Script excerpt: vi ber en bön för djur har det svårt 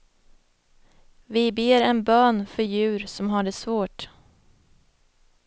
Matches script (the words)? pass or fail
fail